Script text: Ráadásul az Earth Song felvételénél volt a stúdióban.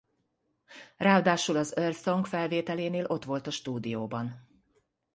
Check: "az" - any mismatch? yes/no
no